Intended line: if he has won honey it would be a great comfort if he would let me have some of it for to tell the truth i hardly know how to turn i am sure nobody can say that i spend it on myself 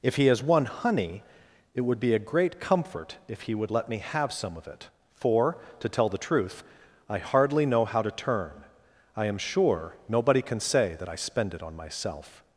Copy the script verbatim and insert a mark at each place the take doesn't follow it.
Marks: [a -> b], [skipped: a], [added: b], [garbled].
if he has won honey it would be a great comfort if he would let me have some of it for to tell the truth i hardly know how to turn i am sure nobody can say that i spend it on myself